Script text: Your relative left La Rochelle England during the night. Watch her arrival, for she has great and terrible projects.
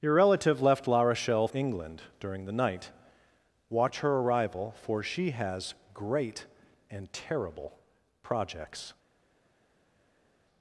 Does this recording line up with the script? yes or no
yes